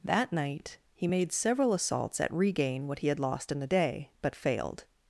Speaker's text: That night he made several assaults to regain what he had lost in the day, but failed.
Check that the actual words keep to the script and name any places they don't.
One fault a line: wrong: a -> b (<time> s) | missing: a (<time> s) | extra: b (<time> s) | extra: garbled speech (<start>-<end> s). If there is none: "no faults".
wrong: to -> at (2.2 s)